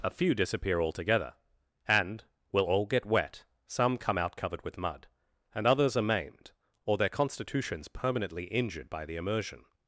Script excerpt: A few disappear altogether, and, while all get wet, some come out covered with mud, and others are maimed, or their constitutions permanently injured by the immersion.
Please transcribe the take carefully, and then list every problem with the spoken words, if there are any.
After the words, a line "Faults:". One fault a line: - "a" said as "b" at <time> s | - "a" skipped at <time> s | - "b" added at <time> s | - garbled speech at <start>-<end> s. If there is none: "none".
A few disappear altogether, and, will all get wet, some come out covered with mud, and others are maimed, or their constitutions permanently injured by the immersion.
Faults:
- "while" said as "will" at 2.5 s